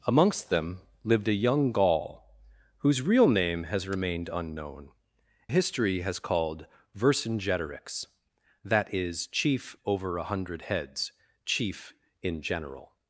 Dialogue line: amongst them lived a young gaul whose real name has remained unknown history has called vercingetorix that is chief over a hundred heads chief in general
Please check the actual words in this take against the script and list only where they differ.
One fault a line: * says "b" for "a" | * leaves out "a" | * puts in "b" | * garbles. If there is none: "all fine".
all fine